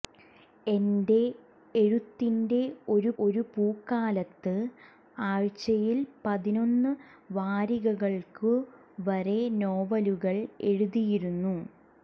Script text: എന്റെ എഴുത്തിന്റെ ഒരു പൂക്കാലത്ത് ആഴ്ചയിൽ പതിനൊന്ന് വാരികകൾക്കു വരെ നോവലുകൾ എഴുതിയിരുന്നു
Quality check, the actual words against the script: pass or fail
fail